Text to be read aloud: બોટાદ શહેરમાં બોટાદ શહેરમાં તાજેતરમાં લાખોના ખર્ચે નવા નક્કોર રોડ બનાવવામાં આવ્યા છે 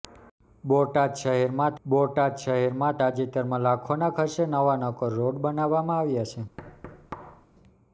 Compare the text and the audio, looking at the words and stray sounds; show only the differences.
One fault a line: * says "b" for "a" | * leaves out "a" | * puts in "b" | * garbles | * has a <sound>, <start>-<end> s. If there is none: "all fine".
* has a thud, 6.6-7.5 s